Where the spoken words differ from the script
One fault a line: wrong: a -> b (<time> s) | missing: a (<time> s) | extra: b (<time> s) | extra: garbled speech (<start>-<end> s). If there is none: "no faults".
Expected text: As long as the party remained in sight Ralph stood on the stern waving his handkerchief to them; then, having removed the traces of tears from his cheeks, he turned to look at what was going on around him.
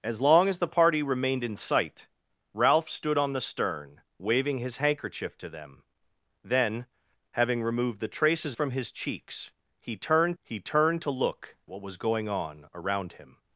missing: of tears (8.6 s)
extra: he turned (10.4 s)
missing: at (11.6 s)